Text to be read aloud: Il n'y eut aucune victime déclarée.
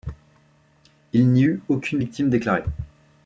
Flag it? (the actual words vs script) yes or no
no